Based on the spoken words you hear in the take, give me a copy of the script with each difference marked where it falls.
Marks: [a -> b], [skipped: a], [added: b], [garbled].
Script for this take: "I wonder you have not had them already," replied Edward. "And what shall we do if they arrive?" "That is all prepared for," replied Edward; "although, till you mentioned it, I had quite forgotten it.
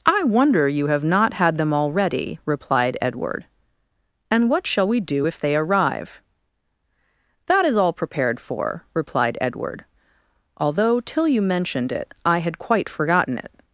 "I wonder you have not had them already," replied Edward. "And what shall we do if they arrive?" "That is all prepared for," replied Edward; "although, till you mentioned it, I had quite forgotten it.